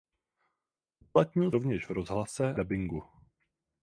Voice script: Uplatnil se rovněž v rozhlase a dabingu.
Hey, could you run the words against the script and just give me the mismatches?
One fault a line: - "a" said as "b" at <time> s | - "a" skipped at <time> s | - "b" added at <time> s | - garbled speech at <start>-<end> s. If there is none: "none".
- "se" skipped at 1.5 s
- "a" skipped at 2.6 s